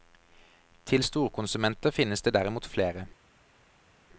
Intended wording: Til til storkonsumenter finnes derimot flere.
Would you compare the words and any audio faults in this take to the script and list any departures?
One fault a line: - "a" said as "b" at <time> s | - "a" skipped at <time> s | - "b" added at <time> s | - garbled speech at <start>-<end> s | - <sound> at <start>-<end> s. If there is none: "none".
- "til" skipped at 1.0 s
- "det" added at 2.2 s